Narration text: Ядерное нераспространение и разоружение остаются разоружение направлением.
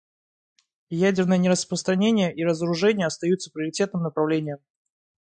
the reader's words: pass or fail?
fail